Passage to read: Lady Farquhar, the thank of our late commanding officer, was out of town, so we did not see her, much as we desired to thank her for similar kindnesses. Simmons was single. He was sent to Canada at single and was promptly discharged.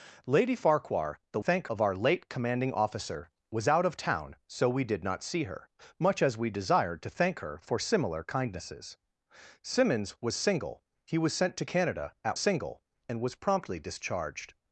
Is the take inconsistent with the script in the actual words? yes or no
no